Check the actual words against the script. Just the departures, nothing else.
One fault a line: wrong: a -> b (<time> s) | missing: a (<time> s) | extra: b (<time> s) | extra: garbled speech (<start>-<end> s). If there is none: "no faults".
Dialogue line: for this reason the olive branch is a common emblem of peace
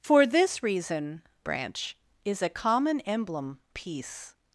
missing: the olive (1.2 s)
missing: of (3.6 s)